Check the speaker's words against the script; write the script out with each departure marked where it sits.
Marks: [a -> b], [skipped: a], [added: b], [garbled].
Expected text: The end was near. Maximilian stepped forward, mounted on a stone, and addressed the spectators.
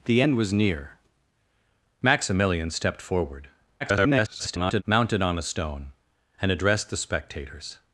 The end was near. Maximilian stepped forward, [garbled] mounted on a stone, and addressed the spectators.